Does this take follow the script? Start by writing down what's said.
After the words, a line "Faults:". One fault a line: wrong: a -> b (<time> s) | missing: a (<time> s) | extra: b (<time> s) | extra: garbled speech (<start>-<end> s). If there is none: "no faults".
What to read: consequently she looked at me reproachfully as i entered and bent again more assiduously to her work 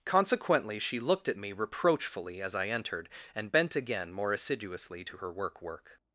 consequently she looked at me reproachfully as i entered and bent again more assiduously to her work work
Faults:
extra: work (5.6 s)